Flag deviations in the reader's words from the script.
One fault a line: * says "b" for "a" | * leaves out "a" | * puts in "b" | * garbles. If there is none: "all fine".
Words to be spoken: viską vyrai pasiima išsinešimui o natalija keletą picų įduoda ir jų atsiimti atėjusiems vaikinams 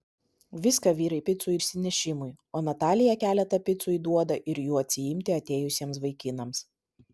* says "picų" for "pasiima"